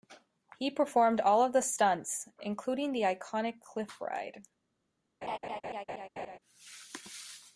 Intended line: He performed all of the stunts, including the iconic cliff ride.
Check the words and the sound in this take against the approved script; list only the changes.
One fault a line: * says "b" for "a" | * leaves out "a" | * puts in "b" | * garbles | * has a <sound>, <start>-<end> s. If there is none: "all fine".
* has a laugh, 5.2-6.4 s